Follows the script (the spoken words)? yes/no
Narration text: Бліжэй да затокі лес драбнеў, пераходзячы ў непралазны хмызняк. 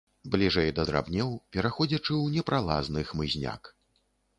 no